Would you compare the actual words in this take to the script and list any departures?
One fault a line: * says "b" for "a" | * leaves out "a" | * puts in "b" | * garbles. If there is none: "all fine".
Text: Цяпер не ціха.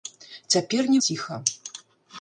all fine